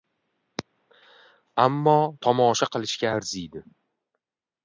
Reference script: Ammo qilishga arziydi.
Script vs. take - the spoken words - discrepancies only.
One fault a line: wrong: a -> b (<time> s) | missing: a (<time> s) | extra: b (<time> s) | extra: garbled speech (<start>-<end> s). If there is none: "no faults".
extra: tomosha (2.3 s)